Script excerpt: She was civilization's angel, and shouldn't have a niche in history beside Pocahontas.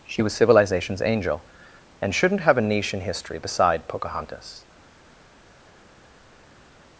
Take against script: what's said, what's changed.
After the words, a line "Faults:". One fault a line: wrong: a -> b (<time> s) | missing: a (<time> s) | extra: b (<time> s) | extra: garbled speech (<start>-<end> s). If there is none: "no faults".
She was civilization's angel, and shouldn't have a niche in history beside Pocahontas.
Faults:
no faults